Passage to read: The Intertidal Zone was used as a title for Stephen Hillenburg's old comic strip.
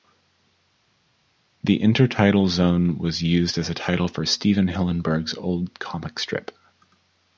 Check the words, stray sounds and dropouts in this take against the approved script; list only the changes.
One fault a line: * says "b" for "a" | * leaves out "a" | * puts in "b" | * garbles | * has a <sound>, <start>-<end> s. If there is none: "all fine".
all fine